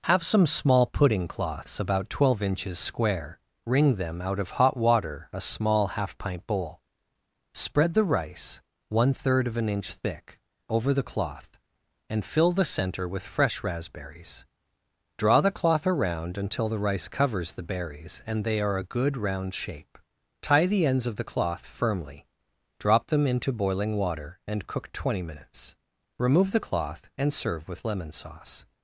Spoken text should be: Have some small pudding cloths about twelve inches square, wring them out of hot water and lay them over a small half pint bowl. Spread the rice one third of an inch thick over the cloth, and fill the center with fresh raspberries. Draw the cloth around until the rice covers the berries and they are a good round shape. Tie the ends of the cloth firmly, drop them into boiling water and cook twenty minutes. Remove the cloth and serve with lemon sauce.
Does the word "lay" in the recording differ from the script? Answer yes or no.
yes